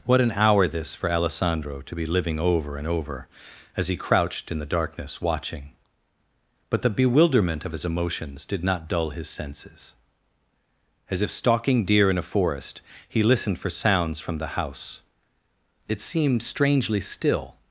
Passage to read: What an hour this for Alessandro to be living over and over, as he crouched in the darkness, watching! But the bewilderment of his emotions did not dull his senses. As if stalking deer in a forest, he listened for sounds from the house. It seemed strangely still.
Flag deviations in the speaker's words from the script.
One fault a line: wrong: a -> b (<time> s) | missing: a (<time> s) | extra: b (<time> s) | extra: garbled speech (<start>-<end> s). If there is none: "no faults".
no faults